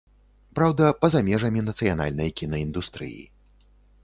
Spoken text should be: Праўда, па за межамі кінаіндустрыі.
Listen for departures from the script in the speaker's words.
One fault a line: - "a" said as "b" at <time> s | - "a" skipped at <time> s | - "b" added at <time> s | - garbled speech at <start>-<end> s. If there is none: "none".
- "нацыянальнай" added at 1.7 s